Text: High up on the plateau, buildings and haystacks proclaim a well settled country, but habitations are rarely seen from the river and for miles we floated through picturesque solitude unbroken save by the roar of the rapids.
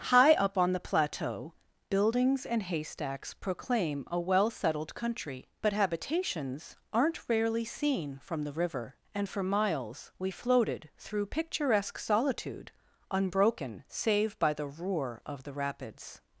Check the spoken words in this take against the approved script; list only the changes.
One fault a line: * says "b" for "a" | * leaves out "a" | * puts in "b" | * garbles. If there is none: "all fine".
* says "aren't" for "are"